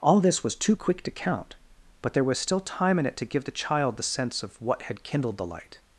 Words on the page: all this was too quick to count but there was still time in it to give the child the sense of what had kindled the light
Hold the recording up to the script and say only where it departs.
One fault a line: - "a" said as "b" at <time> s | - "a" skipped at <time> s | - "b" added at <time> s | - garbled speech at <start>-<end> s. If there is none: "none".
none